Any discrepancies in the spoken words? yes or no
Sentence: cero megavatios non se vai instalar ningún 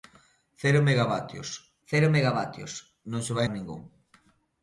yes